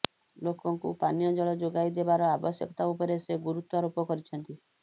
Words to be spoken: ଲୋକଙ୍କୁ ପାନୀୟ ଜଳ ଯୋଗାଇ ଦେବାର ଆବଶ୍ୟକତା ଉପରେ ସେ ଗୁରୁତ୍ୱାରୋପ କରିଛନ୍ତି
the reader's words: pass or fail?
pass